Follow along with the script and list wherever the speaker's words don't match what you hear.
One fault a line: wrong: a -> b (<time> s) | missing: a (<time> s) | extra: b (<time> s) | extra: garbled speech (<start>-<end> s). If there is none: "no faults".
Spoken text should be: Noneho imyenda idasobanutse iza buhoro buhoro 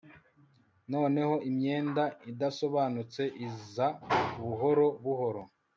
no faults